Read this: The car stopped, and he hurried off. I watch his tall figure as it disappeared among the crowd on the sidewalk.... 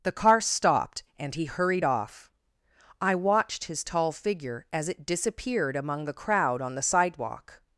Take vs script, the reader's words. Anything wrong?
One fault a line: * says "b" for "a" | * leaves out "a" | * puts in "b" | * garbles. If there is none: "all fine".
* says "watched" for "watch"